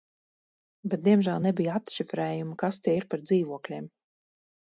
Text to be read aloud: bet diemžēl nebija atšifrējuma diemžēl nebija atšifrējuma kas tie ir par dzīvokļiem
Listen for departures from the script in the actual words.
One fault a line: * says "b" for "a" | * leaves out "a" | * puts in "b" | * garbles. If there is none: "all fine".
* leaves out "diemžēl nebija atšifrējuma"